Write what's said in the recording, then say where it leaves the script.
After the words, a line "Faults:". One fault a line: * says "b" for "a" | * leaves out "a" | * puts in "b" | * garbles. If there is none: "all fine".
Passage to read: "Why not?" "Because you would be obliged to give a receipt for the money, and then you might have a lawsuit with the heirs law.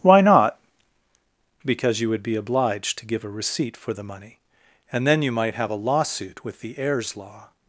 "Why not?" "Because you would be obliged to give a receipt for the money, and then you might have a lawsuit with the heirs law.
Faults:
all fine